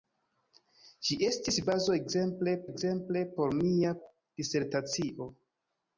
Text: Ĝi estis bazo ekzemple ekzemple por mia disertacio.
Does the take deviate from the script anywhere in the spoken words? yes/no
no